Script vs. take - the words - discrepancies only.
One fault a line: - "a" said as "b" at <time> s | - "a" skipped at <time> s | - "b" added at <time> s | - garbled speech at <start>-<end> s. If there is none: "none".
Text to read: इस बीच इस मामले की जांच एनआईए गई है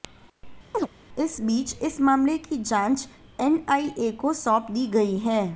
- "को सौंप दी" added at 4.2 s